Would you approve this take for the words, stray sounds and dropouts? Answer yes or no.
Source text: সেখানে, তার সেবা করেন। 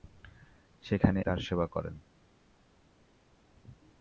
yes